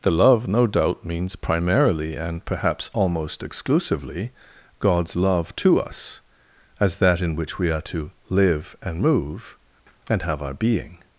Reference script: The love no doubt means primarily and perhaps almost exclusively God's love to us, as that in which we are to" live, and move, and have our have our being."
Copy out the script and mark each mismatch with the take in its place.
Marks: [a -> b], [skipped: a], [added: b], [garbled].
The love no doubt means primarily and perhaps almost exclusively God's love to us, as that in which we are to" live, and move, and have our [skipped: have our] being."